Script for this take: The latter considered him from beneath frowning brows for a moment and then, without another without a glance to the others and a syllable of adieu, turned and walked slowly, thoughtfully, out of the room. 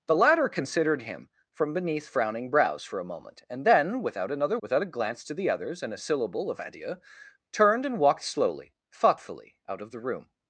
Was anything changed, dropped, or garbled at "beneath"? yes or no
no